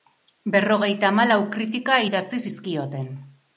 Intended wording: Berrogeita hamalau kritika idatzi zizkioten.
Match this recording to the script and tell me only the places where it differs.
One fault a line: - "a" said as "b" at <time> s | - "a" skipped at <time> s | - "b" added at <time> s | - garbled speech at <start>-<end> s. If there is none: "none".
none